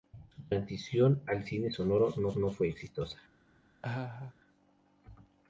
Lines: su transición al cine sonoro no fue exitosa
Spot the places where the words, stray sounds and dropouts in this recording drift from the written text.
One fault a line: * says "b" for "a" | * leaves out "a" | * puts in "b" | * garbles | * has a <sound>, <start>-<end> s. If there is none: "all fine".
* puts in "no"
* has a laugh, 3.8-4.3 s